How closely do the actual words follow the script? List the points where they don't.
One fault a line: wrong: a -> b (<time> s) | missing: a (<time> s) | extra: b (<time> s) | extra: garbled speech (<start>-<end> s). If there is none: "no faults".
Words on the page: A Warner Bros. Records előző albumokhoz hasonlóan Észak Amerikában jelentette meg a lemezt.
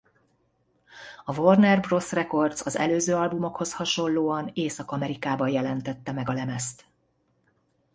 extra: az (2.6 s)